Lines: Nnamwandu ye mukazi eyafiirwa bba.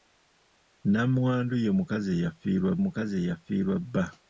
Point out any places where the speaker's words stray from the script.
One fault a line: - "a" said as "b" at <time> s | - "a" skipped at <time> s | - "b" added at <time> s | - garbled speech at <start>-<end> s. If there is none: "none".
- "mukazi eyafiirwa" added at 2.8 s